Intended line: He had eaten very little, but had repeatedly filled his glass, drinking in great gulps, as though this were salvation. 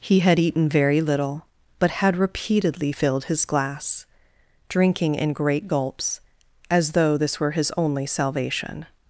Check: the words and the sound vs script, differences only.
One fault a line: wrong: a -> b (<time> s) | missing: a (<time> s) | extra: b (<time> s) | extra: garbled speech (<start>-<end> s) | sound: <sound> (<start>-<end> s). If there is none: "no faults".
extra: his only (7.5 s)